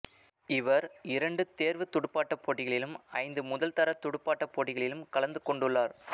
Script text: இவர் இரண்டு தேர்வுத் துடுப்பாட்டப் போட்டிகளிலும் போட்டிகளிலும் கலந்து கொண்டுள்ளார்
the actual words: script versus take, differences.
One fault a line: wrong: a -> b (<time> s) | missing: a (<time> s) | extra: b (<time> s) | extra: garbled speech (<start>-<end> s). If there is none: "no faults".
extra: ஐந்து முதல்தர துடுப்பாட்டப் (3.2 s)